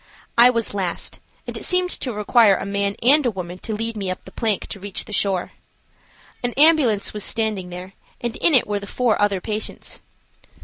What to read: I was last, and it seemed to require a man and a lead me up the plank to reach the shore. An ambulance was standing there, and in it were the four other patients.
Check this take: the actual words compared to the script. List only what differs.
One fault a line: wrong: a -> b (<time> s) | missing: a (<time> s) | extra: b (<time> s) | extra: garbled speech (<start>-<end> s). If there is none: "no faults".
extra: woman to (3.3 s)